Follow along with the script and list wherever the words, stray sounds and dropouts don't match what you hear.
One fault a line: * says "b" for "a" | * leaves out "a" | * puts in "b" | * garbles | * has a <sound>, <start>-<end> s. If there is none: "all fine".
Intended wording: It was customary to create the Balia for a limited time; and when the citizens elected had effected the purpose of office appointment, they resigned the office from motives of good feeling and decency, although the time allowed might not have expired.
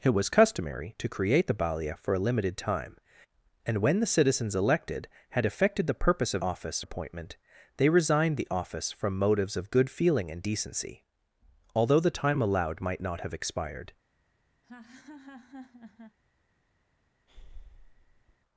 * has a laugh, 14.6-16.2 s
* has a breath, 17.3-18.4 s